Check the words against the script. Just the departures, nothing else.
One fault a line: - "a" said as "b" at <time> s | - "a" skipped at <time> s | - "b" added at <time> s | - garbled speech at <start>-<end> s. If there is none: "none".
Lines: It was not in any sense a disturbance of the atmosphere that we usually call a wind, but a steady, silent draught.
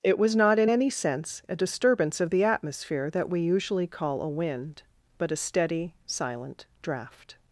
none